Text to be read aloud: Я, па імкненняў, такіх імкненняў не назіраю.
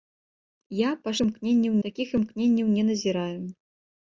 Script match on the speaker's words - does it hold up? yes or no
yes